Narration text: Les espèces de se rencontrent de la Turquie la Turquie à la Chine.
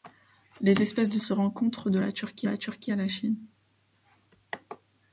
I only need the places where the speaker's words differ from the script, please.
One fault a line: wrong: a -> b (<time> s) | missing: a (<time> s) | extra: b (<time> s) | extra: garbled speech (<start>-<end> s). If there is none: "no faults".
no faults